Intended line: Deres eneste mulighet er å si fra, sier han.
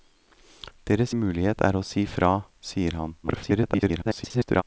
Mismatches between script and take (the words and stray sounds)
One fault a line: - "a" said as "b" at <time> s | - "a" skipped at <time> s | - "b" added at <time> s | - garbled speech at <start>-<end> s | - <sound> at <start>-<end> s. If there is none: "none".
- "eneste" skipped at 1.1 s
- garbled speech at 3.2-4.6 s